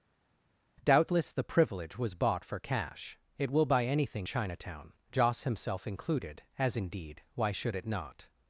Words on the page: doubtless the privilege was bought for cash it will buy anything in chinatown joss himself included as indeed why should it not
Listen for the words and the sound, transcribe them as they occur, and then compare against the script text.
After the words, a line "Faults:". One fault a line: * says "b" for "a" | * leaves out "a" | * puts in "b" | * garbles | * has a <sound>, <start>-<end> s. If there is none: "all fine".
doubtless the privilege was bought for cash it will buy anything chinatown joss himself included as indeed why should it not
Faults:
* leaves out "in"